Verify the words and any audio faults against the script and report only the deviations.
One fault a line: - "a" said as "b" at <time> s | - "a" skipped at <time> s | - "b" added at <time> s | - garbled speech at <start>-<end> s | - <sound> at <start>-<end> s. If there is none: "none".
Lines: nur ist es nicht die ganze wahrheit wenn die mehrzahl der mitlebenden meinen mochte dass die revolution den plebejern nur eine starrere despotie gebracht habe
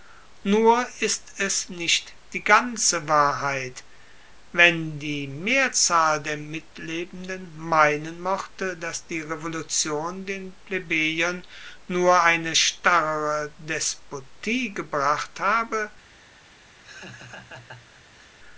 - laugh at 16.8-18.3 s